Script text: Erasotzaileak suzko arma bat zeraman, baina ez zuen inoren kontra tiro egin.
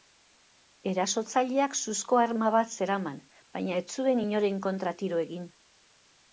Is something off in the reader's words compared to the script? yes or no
no